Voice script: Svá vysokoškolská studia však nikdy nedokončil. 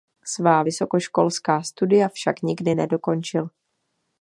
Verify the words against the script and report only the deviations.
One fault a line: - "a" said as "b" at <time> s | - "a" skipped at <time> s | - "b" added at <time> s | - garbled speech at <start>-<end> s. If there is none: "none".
none